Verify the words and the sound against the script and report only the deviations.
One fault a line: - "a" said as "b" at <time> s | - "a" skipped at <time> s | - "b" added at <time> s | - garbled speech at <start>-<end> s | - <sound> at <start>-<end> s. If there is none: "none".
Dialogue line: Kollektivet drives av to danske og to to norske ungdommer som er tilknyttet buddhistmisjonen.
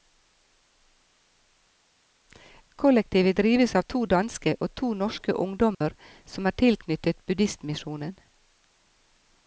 - "to" skipped at 4.9 s
- dropout at 5.7-5.8 s